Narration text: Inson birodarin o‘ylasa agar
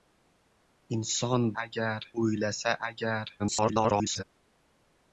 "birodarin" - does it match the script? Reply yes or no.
no